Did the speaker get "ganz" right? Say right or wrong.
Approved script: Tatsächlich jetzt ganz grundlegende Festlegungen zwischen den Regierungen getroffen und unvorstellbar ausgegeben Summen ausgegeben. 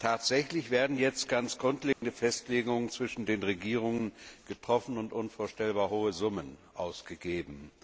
right